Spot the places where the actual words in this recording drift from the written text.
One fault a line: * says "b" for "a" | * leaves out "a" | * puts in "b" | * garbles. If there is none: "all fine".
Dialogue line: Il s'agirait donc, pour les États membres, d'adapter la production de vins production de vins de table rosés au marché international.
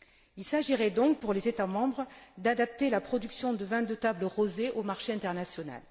* leaves out "production de vins"